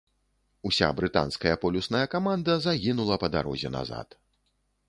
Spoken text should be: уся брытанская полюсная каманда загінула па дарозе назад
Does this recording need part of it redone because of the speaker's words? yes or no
no